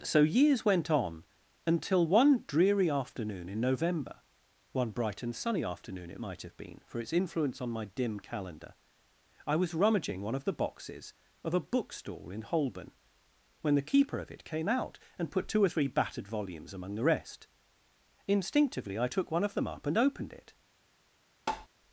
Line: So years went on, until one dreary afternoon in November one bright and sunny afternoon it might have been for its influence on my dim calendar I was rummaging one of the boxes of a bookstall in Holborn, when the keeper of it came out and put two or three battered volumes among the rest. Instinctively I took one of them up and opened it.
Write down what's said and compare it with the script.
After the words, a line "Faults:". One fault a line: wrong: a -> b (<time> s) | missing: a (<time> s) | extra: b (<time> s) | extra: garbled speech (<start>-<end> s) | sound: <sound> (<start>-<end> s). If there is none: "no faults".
So years went on, until one dreary afternoon in November one bright and sunny afternoon it might have been for its influence on my dim calendar I was rummaging one of the boxes of a bookstall in Holborn, when the keeper of it came out and put two or three battered volumes among the rest. Instinctively I took one of them up and opened it.
Faults:
sound: tap (21.5-21.7 s)